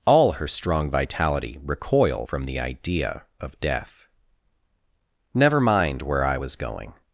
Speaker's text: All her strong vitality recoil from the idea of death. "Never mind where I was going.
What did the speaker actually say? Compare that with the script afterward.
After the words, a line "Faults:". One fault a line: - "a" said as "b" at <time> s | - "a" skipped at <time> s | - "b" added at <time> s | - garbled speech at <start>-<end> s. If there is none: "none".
All her strong vitality recoil from the idea of death. "Never mind where I was going.
Faults:
none